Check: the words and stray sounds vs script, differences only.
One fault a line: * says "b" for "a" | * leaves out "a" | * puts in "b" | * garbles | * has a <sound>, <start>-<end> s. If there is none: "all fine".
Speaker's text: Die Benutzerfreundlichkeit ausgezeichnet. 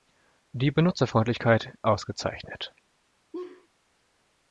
* has a laugh, 3.3-3.7 s